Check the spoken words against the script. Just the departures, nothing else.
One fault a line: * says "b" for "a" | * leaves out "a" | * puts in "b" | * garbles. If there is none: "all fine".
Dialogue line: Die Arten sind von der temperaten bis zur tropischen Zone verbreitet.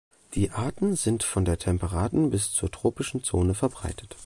all fine